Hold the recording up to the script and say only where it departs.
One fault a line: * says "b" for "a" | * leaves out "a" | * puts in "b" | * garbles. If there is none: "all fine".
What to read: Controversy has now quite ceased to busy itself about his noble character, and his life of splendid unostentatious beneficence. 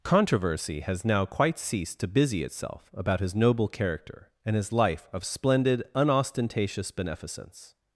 all fine